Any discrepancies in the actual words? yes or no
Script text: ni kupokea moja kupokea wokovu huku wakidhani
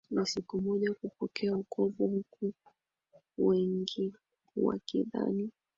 yes